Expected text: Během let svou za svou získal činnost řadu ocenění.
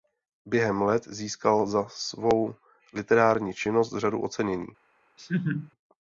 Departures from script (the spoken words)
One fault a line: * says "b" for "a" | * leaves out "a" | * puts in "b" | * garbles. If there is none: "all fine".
* says "získal" for "svou"
* says "literární" for "získal"